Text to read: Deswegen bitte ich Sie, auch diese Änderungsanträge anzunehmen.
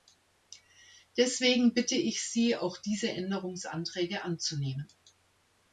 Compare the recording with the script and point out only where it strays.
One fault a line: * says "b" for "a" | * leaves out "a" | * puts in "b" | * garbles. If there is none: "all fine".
all fine